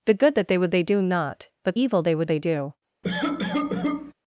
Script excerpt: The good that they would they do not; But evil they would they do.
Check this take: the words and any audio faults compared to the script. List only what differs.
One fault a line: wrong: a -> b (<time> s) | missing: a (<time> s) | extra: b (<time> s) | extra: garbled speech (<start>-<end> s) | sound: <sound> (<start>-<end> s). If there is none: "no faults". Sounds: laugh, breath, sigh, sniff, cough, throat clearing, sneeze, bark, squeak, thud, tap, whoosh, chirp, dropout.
sound: cough (3.0-4.1 s)